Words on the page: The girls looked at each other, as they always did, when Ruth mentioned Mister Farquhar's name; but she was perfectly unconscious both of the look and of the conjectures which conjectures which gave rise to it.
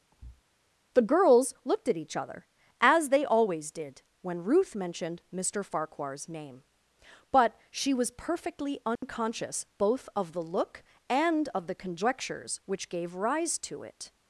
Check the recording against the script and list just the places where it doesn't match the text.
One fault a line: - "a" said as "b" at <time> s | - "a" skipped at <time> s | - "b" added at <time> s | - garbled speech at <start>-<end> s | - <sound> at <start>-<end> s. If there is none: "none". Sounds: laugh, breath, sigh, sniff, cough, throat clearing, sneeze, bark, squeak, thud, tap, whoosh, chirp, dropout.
- thud at 0.1-0.4 s
- dropout at 9.0-9.0 s
- "conjectures which" skipped at 12.9 s